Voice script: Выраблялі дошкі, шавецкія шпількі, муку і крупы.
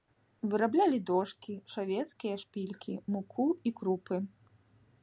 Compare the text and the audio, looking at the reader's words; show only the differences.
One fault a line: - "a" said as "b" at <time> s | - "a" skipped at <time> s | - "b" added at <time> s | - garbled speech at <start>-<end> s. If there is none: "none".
none